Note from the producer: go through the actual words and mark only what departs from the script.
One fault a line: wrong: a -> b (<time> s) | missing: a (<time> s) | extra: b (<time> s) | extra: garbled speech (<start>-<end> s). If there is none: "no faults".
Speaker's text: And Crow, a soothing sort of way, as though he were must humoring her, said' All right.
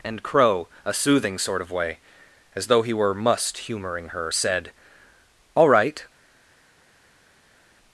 no faults